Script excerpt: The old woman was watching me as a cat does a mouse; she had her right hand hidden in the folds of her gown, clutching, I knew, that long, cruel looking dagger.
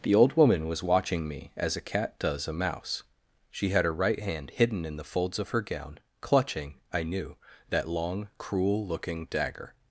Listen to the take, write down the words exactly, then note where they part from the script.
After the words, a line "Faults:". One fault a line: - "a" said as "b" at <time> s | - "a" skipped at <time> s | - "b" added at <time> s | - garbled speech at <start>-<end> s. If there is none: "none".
The old woman was watching me as a cat does a mouse; she had her right hand hidden in the folds of her gown, clutching, I knew, that long, cruel looking dagger.
Faults:
none